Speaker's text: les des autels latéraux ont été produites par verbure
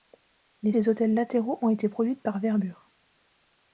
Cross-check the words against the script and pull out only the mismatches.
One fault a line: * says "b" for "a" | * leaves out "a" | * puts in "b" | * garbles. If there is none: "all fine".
all fine